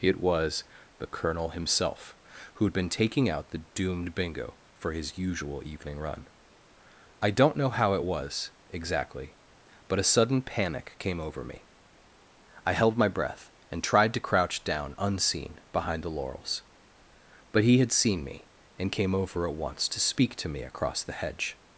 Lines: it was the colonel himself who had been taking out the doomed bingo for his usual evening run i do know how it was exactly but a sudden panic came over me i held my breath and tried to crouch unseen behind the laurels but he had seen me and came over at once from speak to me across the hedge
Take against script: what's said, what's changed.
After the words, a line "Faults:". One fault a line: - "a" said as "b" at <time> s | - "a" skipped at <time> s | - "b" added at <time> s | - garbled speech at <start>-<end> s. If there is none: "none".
it was the colonel himself who had been taking out the doomed bingo for his usual evening run i don't know how it was exactly but a sudden panic came over me i held my breath and tried to crouch down unseen behind the laurels but he had seen me and came over at once to speak to me across the hedge
Faults:
- "do" said as "don't" at 7.3 s
- "down" added at 14.6 s
- "from" said as "to" at 19.9 s